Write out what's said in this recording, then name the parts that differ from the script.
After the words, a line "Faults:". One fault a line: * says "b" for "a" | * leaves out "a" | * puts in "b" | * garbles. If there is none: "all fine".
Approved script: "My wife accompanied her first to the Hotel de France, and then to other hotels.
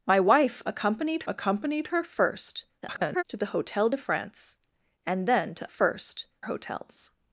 "My wife accompanied accompanied her first [garbled] to the Hotel de France, and then to first hotels.
Faults:
* puts in "accompanied"
* garbles
* says "first" for "other"